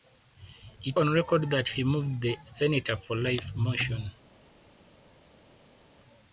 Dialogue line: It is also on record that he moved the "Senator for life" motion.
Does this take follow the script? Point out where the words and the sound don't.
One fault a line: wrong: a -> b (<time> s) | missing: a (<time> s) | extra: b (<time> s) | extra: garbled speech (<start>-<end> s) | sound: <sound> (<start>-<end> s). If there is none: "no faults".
missing: is also (1.0 s)